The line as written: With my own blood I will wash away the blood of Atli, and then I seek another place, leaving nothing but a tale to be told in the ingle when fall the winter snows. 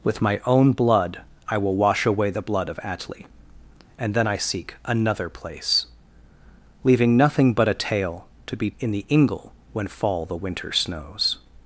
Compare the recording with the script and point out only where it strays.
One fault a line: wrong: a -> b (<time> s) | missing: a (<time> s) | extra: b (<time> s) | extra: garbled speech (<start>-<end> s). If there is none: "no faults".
missing: told (8.7 s)